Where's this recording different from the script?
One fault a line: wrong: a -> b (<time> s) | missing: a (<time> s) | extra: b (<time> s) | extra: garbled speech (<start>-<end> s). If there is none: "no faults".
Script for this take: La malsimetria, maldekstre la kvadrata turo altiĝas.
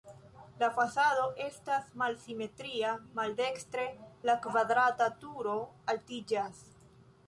extra: fasado estas (0.8 s)